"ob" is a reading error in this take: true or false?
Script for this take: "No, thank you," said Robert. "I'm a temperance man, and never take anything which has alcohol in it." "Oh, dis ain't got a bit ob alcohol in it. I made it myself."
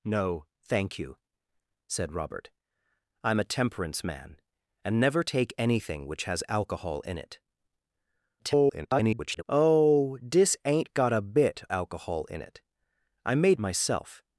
true